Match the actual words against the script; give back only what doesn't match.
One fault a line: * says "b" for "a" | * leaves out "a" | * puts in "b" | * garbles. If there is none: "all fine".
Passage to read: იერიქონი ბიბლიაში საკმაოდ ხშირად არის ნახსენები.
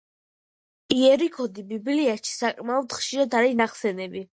all fine